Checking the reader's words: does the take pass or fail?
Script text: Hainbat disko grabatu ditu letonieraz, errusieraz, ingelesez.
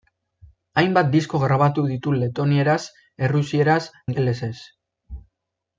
pass